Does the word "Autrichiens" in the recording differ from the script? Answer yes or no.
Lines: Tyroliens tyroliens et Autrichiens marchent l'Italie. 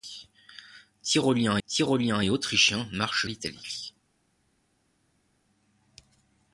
no